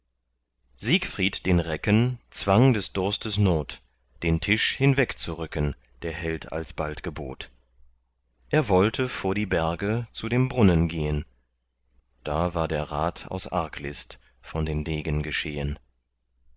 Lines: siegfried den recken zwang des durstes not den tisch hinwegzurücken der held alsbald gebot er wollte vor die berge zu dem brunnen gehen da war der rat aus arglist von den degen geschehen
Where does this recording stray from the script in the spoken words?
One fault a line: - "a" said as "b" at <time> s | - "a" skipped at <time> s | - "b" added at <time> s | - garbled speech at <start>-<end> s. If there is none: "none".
none